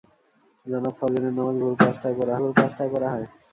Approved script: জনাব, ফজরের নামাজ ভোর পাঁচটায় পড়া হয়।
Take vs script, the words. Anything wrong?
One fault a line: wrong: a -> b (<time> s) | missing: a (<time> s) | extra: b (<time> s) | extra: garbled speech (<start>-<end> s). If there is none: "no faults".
extra: ভোর পাঁচটায় পড়া (2.4 s)